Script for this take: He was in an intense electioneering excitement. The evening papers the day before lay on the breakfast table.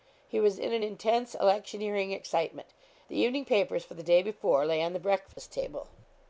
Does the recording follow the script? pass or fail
fail